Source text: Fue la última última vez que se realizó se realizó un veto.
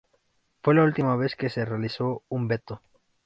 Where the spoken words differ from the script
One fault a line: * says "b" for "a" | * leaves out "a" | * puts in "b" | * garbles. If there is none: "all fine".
* leaves out "última"
* leaves out "se realizó"